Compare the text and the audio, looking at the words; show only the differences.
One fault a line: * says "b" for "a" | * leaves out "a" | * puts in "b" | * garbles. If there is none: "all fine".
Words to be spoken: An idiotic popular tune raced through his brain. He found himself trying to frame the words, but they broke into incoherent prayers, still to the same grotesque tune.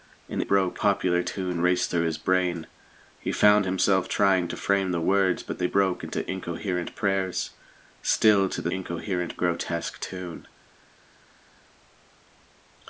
* says "broke" for "idiotic"
* says "incoherent" for "same"